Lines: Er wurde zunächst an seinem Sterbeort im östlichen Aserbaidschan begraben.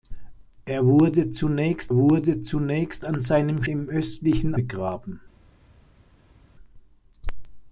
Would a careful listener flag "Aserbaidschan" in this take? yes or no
yes